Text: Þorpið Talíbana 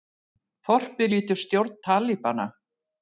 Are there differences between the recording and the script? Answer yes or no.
yes